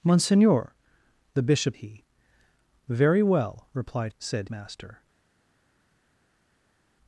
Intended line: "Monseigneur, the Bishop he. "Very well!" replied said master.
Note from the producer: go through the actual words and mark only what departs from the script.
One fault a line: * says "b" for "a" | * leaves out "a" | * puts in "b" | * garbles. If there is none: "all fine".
all fine